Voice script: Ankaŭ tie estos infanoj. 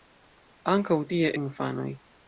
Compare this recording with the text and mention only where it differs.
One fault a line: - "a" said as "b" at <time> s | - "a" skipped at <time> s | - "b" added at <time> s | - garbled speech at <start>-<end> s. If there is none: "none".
- "estos" skipped at 1.3 s